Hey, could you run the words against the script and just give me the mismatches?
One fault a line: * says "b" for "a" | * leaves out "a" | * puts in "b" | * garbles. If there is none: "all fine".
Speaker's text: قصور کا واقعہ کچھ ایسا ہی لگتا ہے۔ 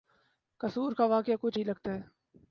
* leaves out "ایسا"